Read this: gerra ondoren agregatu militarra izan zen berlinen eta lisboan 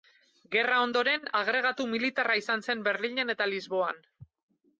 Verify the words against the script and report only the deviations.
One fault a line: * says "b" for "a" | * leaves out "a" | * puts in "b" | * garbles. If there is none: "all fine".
all fine